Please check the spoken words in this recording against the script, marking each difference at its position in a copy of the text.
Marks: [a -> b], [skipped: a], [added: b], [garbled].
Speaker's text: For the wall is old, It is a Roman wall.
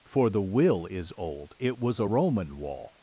For the [wall -> will] is old, It [is -> was] a Roman wall.